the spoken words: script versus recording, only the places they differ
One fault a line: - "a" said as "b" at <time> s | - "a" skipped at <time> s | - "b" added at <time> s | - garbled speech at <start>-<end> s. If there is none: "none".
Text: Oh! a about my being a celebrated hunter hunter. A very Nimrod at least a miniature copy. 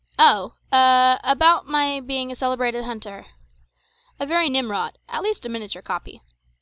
- "hunter" skipped at 3.2 s